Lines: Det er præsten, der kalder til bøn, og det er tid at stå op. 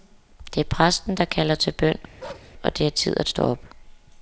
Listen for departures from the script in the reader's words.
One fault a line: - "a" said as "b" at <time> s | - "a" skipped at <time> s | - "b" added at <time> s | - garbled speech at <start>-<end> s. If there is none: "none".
none